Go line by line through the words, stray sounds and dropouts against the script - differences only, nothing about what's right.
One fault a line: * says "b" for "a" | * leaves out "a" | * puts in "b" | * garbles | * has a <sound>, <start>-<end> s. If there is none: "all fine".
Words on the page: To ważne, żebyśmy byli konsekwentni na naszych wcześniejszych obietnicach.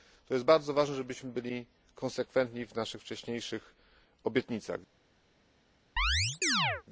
* puts in "jest bardzo"
* says "w" for "na"
* has a chirp, 6.0-6.8 s